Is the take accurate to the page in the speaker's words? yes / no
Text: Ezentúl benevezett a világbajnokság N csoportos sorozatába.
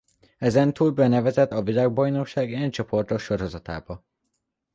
yes